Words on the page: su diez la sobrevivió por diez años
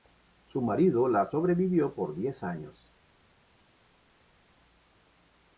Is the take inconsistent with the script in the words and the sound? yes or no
yes